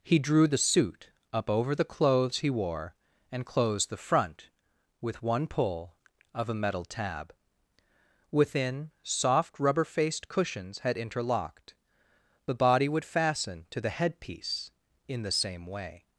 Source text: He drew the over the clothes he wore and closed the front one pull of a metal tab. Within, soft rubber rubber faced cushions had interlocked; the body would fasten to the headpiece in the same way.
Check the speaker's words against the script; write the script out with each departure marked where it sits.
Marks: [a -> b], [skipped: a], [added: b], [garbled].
He drew the [added: suit up] over the clothes he wore and closed the front [added: with] one pull of a metal tab. Within, soft rubber [skipped: rubber] faced cushions had interlocked; the body would fasten to the headpiece in the same way.